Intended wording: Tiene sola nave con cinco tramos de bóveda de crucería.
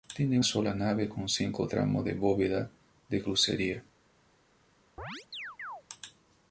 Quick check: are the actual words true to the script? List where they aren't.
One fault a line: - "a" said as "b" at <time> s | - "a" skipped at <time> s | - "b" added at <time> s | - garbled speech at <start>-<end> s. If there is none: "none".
none